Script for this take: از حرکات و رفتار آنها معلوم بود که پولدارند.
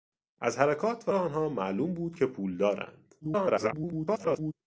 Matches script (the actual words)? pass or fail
fail